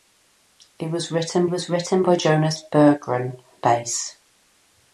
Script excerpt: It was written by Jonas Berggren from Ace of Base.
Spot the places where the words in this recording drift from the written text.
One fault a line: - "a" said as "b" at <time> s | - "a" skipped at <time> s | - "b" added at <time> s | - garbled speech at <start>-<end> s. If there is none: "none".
- "was written" added at 1.5 s
- "from Ace of" skipped at 3.4 s